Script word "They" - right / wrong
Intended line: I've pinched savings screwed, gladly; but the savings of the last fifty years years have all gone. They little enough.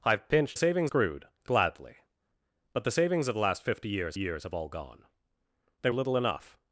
right